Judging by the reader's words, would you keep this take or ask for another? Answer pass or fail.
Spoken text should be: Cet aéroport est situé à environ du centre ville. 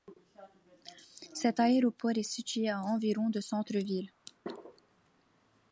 pass